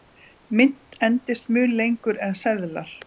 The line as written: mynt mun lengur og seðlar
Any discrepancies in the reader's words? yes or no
yes